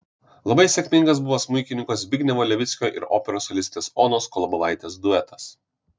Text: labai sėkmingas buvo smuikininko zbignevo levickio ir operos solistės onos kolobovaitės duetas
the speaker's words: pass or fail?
pass